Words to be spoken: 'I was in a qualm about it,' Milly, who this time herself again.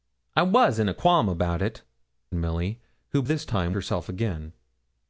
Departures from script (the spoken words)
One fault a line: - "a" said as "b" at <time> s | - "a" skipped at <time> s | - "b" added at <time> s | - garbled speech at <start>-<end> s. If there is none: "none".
none